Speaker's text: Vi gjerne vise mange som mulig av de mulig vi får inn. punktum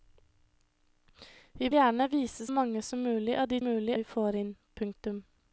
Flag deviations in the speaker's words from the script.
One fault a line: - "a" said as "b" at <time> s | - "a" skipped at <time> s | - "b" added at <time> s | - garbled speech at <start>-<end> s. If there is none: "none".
none